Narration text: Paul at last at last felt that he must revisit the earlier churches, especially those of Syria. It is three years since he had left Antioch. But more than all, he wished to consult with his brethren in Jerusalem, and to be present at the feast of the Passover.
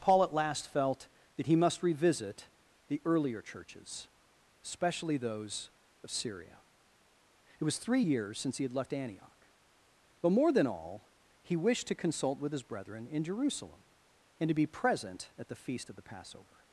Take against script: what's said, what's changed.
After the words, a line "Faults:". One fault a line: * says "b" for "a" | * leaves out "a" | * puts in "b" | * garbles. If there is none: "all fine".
Paul at last felt that he must revisit the earlier churches, especially those of Syria. It was three years since he had left Antioch. But more than all, he wished to consult with his brethren in Jerusalem, and to be present at the feast of the Passover.
Faults:
* leaves out "at last"
* says "was" for "is"